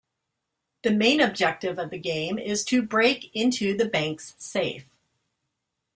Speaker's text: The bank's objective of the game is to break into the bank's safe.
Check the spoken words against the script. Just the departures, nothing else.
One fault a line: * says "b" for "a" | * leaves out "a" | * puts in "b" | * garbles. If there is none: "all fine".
* says "main" for "bank's"